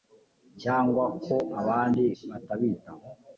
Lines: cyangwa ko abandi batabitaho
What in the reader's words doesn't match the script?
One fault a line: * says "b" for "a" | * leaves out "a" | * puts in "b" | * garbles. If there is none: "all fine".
all fine